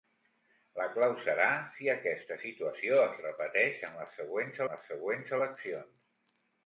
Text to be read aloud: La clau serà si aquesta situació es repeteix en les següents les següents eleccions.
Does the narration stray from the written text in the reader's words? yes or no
no